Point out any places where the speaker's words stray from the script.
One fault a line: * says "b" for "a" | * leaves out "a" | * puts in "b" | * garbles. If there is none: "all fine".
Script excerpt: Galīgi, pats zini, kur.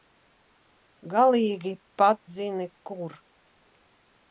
all fine